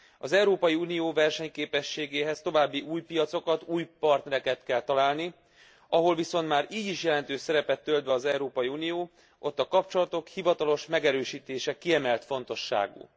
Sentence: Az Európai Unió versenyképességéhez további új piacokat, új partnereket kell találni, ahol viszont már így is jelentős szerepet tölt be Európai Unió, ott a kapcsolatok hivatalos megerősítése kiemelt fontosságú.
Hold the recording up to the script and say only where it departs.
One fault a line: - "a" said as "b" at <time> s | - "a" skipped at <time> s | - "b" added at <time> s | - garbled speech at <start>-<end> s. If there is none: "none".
- "az" added at 8.1 s